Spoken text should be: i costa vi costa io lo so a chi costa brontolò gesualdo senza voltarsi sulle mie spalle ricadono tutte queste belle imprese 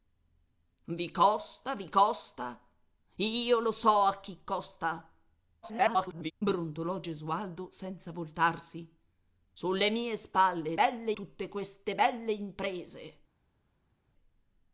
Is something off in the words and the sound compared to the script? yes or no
yes